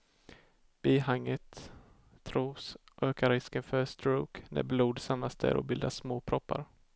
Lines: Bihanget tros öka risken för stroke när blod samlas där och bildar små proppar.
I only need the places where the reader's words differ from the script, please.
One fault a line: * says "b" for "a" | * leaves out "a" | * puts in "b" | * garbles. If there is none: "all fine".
all fine